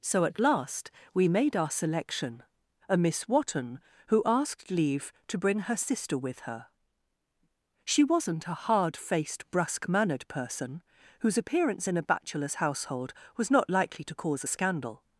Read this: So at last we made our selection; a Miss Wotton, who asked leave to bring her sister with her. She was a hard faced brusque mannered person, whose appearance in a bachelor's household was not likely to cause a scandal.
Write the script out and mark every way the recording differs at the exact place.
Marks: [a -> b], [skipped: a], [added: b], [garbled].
So at last we made our selection; a Miss Wotton, who asked leave to bring her sister with her. She [was -> wasn't] a hard faced brusque mannered person, whose appearance in a bachelor's household was not likely to cause a scandal.